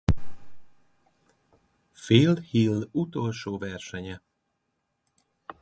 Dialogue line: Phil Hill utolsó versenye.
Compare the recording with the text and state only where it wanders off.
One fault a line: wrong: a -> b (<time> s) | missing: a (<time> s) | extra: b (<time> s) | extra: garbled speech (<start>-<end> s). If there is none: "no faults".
no faults